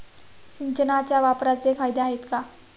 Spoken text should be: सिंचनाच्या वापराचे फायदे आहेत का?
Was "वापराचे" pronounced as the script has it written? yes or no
yes